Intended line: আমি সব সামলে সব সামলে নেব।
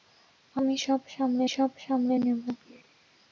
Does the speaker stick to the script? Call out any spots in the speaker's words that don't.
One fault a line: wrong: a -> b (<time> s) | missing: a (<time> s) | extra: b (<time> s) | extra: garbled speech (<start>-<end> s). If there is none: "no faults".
no faults